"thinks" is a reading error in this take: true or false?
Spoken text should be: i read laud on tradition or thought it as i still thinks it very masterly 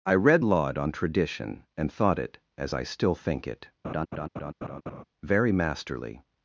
true